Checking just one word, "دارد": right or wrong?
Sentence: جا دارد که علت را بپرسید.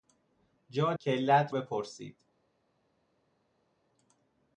wrong